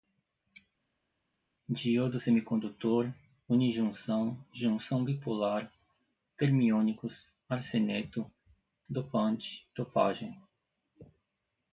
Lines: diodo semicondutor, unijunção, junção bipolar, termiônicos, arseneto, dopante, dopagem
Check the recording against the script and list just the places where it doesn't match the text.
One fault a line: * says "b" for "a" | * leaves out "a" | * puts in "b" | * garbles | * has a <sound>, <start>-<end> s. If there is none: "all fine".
all fine